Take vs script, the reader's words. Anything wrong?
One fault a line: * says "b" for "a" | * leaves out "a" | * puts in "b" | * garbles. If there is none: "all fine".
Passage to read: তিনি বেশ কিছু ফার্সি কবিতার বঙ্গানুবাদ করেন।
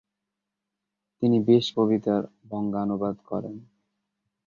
* leaves out "কিছু ফার্সি"